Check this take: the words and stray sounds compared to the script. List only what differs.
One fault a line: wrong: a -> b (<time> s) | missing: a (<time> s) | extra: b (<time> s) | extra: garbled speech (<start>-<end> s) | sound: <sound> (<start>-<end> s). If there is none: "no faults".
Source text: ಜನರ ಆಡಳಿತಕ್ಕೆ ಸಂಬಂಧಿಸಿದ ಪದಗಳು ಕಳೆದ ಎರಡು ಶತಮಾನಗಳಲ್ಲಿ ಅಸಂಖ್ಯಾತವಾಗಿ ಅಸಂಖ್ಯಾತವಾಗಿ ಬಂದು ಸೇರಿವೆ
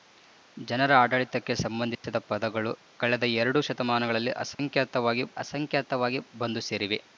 sound: dropout (1.9-2.0 s)
sound: dropout (4.5-4.6 s)